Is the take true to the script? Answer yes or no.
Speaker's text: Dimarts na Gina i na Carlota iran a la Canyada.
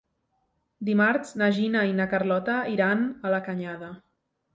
yes